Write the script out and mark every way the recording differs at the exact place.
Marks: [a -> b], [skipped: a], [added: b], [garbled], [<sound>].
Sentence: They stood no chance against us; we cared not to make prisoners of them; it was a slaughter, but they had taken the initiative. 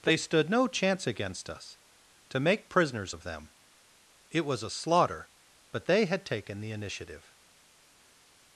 They stood no chance against us; [skipped: we cared not] to make prisoners of them; it was a slaughter, but they had taken the initiative.